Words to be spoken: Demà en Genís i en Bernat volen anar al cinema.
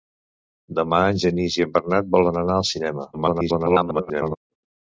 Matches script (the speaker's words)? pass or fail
fail